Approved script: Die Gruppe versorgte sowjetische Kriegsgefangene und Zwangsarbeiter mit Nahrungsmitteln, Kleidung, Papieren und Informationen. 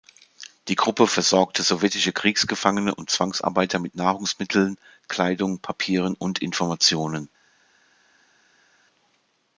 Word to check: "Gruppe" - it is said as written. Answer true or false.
true